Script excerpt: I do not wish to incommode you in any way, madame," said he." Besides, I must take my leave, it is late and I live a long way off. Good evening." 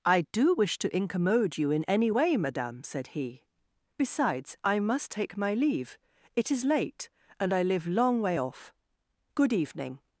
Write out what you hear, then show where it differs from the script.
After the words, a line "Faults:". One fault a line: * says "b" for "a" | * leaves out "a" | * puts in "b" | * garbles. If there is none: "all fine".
I do wish to incommode you in any way, madame," said he." Besides, I must take my leave, it is late and I live long way off. Good evening."
Faults:
* leaves out "not"
* leaves out "a"